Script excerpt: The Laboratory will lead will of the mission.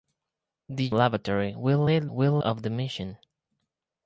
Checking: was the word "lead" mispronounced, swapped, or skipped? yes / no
no